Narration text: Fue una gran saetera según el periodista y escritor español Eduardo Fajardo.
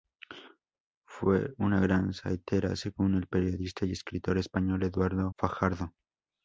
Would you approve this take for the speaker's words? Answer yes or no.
yes